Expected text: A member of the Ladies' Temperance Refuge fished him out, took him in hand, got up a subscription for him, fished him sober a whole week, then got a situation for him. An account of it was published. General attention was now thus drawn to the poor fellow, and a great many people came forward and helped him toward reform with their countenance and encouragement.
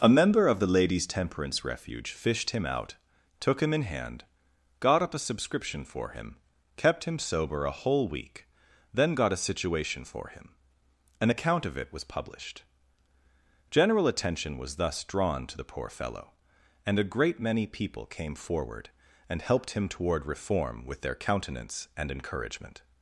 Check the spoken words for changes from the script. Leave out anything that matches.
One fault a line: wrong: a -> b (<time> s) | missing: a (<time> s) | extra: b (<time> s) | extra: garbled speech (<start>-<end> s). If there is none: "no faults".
wrong: fished -> kept (6.8 s)
missing: now (14.8 s)